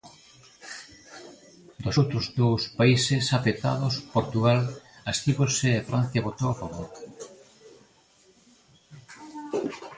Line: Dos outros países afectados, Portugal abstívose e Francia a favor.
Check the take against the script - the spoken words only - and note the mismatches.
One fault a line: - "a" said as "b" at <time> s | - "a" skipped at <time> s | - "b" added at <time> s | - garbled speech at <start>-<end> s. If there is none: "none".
- "dous" added at 2.4 s
- "votou" added at 6.3 s